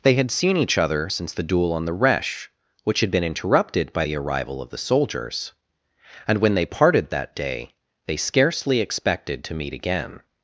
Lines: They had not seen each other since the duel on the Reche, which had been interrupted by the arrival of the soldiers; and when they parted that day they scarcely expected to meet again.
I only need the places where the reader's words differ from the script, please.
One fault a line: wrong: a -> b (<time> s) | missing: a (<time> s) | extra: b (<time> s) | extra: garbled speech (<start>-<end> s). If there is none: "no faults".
missing: not (0.3 s)